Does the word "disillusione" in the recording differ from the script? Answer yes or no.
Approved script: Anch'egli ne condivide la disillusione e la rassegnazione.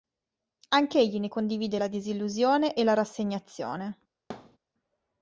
no